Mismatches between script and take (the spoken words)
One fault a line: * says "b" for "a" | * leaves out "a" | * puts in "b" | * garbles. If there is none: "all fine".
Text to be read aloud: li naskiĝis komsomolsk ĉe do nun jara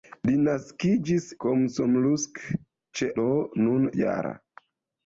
all fine